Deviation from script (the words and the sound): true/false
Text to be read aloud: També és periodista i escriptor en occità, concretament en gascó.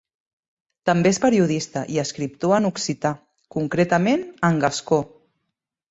false